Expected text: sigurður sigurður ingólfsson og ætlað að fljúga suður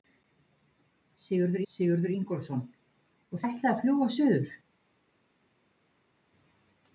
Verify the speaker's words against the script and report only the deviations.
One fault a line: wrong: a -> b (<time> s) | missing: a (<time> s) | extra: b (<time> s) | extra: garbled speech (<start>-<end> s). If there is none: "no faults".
no faults